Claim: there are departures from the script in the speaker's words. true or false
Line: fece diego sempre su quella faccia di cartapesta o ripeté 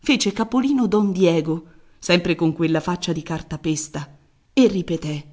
true